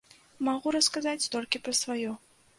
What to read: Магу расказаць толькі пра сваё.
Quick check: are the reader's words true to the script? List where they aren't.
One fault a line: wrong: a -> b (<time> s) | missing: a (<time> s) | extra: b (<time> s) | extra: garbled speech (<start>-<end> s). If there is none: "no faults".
no faults